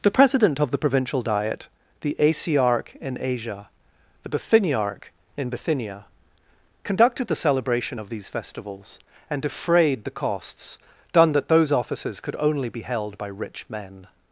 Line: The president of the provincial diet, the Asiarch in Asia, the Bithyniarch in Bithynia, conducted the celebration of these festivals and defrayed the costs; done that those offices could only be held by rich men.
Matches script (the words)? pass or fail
pass